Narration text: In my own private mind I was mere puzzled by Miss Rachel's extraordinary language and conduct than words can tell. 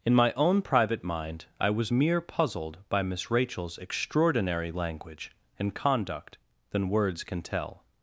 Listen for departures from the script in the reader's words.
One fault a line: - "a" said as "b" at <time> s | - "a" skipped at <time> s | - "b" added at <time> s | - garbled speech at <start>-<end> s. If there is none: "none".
none